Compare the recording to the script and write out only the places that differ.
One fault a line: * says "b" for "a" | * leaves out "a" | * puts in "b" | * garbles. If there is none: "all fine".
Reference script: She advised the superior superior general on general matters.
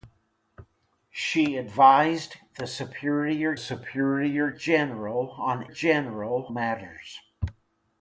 all fine